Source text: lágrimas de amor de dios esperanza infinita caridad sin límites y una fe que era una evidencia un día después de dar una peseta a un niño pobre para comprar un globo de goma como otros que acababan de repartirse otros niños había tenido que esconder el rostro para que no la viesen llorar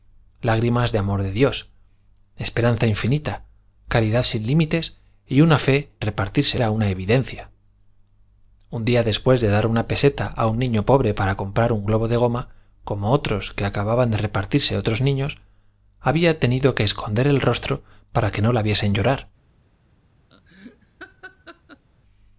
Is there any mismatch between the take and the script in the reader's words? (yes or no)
yes